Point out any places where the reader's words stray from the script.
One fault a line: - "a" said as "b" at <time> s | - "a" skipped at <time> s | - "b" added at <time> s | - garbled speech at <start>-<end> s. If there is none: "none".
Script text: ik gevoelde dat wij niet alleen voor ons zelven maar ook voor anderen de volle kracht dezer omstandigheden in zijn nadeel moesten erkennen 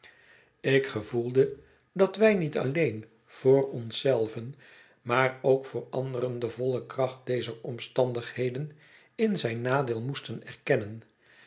none